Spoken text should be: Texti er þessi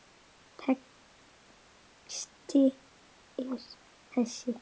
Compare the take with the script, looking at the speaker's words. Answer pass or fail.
pass